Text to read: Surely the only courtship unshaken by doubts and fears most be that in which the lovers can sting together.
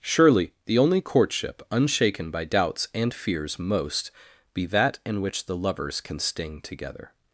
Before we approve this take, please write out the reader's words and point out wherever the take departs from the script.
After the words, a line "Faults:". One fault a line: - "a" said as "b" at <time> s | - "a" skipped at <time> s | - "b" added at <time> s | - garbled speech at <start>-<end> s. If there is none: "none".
Surely the only courtship unshaken by doubts and fears most be that in which the lovers can sting together.
Faults:
none